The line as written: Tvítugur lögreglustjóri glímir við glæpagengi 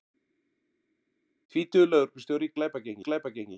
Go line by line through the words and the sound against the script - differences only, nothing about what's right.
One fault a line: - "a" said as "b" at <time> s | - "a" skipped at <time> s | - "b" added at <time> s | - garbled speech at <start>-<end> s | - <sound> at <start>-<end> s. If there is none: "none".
- "glímir" said as "glæpagengi" at 2.6 s